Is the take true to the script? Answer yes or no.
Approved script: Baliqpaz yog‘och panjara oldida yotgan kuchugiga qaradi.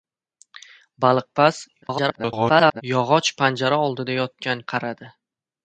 no